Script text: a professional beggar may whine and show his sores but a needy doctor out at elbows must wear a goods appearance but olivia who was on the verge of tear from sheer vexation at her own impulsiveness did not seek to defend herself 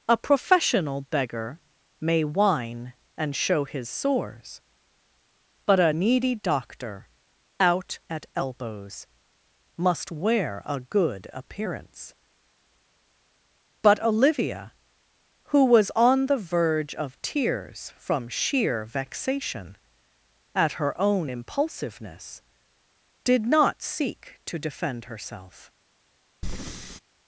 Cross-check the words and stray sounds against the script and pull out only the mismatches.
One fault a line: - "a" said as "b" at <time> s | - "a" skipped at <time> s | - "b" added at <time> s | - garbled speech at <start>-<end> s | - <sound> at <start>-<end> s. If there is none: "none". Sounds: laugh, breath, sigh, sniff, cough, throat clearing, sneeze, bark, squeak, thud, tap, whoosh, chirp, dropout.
- "goods" said as "good" at 10.8 s
- "tear" said as "tears" at 17.2 s
- breath at 26.4-27.0 s